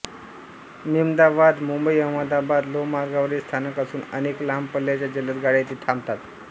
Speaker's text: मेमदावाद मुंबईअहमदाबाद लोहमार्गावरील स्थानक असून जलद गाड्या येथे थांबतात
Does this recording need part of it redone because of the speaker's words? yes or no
yes